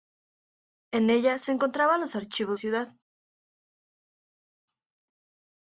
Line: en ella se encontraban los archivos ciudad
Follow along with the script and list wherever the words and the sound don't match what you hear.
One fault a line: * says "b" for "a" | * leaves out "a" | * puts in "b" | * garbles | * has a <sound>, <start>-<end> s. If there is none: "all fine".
all fine